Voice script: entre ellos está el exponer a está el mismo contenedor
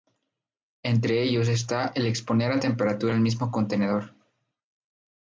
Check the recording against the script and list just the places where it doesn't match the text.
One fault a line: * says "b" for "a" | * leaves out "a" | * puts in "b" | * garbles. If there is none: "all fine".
* says "temperatura" for "está"